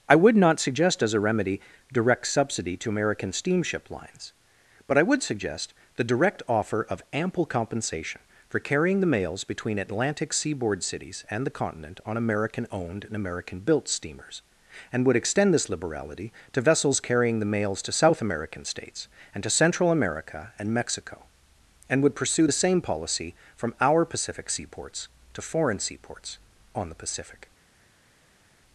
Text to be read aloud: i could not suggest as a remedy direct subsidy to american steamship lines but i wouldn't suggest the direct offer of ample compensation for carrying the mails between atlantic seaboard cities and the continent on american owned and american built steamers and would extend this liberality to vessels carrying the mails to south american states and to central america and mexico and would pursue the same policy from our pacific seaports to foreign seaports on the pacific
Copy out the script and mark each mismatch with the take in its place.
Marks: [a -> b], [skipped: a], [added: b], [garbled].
i [could -> would] not suggest as a remedy direct subsidy to american steamship lines but i [wouldn't -> would] suggest the direct offer of ample compensation for carrying the mails between atlantic seaboard cities and the continent on american owned and american built steamers and would extend this liberality to vessels carrying the mails to south american states and to central america and mexico and would pursue the same policy from our pacific seaports to foreign seaports on the pacific